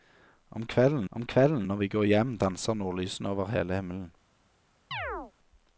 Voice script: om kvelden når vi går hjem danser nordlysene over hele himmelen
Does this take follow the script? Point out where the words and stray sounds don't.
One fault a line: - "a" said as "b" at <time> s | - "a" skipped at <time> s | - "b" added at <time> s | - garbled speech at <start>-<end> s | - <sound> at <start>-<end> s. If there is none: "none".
- "om kvelden" added at 1.1 s
- chirp at 4.9-5.3 s